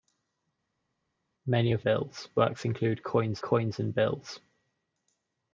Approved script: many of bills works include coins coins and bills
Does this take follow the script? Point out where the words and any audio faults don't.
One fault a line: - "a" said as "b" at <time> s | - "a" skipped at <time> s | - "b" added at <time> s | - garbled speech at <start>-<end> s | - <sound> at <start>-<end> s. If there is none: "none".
none